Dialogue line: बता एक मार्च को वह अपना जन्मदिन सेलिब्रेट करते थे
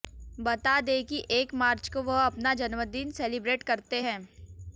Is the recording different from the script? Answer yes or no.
yes